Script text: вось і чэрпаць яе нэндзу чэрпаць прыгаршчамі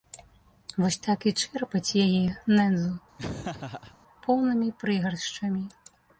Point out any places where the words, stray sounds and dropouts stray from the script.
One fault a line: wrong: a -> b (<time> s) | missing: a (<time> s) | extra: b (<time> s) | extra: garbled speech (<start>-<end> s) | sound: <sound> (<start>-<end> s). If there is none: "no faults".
extra: так (1.1 s)
sound: laugh (3.2-4.0 s)
wrong: чэрпаць -> поўнымі (4.2 s)